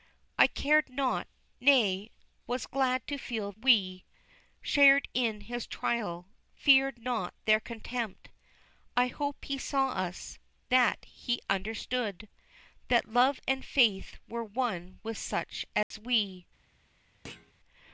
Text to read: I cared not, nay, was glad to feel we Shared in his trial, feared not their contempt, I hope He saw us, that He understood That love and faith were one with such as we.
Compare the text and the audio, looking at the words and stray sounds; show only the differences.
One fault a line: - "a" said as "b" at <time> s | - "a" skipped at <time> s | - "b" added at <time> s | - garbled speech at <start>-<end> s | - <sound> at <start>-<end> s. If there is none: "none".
- dropout at 15.8-15.9 s
- thud at 17.2-17.5 s